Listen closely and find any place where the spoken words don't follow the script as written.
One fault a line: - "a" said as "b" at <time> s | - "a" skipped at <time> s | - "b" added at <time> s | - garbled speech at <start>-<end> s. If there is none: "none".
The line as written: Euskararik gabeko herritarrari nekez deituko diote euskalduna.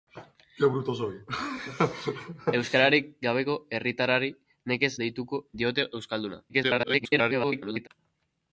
- garbled speech at 6.5-7.9 s